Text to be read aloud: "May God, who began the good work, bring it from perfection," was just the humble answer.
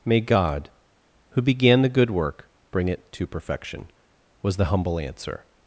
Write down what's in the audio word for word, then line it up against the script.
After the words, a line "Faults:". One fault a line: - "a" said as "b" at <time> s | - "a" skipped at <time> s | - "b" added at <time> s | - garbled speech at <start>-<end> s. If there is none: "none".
"May God, who began the good work, bring it to perfection," was the humble answer.
Faults:
- "from" said as "to" at 3.1 s
- "just" skipped at 4.6 s